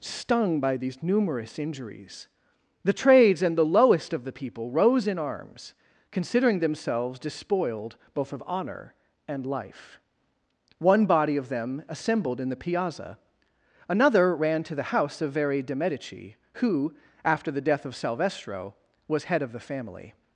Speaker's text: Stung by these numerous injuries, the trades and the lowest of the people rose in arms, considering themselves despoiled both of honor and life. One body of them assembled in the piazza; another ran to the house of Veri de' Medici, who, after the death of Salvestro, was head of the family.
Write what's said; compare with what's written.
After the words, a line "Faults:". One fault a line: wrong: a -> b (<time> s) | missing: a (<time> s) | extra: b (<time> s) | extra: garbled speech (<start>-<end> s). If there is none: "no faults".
Stung by these numerous injuries, the trades and the lowest of the people rose in arms, considering themselves despoiled both of honor and life. One body of them assembled in the piazza; another ran to the house of Veri de' Medici, who, after the death of Salvestro, was head of the family.
Faults:
no faults